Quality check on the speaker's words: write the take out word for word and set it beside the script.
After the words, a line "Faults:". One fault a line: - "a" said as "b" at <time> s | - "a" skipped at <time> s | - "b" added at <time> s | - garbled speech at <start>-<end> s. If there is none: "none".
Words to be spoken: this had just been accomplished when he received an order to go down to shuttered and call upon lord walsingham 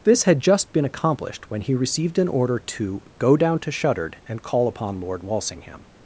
this had just been accomplished when he received an order to go down to shuttered and call upon lord walsingham
Faults:
none